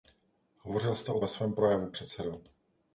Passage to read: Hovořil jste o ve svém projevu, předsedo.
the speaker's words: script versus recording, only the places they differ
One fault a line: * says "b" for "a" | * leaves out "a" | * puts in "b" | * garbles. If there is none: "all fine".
all fine